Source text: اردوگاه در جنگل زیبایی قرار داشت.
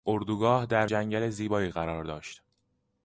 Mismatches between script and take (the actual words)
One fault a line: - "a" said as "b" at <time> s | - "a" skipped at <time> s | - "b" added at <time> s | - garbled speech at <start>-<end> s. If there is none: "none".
none